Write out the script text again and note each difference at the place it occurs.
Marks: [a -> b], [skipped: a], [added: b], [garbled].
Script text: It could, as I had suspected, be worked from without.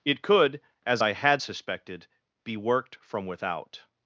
It could, as I had suspected, be worked from without.